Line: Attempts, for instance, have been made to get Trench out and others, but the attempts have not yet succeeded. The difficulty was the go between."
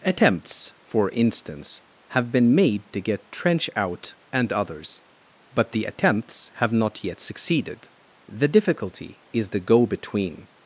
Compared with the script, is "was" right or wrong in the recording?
wrong